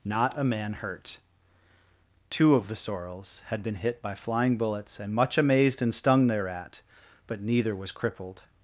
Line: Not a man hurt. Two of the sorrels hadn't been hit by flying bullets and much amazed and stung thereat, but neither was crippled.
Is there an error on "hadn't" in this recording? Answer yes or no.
yes